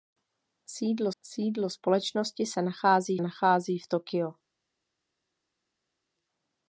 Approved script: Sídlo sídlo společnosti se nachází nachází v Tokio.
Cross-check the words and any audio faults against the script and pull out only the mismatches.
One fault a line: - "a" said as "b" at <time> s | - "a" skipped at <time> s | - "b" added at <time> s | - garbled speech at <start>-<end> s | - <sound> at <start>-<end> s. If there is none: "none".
none